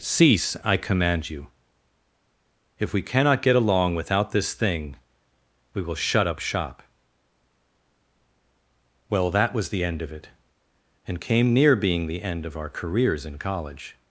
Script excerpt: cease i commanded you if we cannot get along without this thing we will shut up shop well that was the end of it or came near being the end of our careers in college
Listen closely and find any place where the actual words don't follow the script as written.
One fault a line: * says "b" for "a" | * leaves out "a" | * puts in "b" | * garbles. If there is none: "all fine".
* says "command" for "commanded"
* says "and" for "or"